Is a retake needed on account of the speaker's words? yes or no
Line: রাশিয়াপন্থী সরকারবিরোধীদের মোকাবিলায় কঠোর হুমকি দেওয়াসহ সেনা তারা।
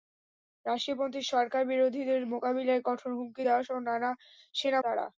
no